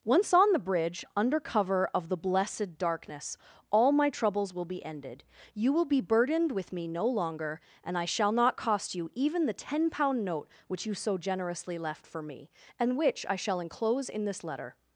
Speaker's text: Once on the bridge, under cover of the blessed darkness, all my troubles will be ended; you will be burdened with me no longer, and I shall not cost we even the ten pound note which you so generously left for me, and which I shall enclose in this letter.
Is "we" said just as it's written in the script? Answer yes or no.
no